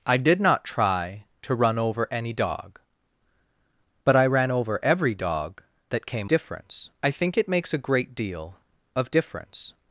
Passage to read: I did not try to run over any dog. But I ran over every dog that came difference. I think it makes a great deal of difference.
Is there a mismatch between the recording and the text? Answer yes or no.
no